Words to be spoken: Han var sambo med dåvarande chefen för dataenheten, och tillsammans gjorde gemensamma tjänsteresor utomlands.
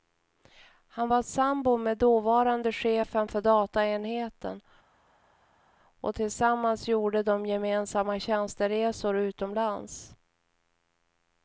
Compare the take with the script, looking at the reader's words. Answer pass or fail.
fail